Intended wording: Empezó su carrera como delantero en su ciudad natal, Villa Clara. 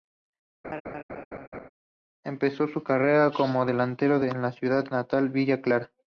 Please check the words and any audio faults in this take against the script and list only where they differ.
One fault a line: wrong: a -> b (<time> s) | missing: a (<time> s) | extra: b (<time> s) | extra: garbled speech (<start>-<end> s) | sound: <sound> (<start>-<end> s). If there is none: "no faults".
sound: laugh (0.6-1.7 s)